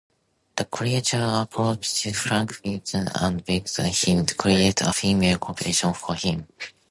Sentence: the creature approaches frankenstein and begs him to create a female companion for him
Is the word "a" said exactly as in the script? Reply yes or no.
yes